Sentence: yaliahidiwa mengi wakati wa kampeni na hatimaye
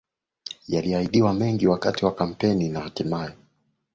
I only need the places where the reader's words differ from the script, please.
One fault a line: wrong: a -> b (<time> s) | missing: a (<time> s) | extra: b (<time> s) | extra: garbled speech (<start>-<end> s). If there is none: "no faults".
no faults